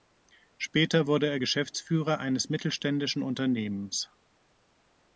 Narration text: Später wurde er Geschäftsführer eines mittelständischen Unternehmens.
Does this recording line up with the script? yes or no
yes